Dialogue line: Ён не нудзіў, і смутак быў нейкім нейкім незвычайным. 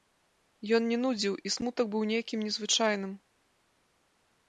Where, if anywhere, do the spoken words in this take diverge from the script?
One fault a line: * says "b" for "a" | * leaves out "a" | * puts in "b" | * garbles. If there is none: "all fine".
* leaves out "нейкім"